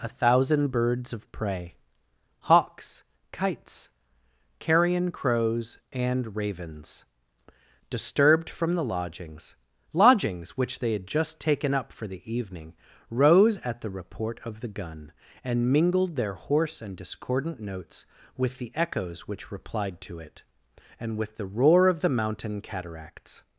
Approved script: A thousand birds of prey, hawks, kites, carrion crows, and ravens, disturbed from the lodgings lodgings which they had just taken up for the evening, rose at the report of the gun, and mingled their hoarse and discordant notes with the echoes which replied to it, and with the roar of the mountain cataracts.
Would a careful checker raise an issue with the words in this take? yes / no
no